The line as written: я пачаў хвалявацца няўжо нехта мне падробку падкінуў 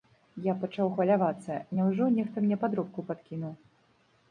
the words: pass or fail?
pass